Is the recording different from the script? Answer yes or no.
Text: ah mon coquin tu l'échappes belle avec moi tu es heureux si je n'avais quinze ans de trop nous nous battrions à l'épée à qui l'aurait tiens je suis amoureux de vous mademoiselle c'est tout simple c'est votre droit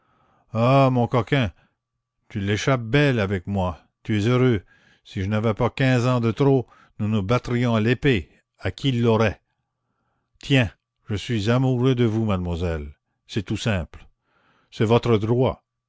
yes